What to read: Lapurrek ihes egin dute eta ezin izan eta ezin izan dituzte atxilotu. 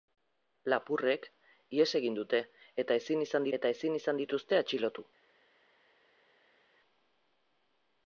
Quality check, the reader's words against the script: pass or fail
pass